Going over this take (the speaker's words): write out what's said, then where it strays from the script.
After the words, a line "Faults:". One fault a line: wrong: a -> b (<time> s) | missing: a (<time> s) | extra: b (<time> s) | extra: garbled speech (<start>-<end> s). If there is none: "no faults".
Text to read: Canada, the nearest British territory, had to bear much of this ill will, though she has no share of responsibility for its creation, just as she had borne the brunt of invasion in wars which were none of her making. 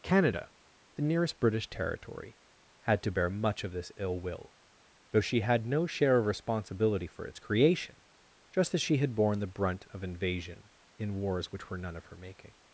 Canada, the nearest British territory, had to bear much of this ill will, though she had no share of responsibility for its creation, just as she had borne the brunt of invasion in wars which were none of her making.
Faults:
wrong: has -> had (5.4 s)